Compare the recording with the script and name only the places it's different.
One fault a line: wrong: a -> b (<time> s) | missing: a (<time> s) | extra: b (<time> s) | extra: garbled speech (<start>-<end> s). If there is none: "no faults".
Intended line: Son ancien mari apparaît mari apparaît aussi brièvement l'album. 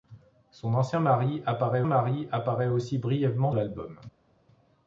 no faults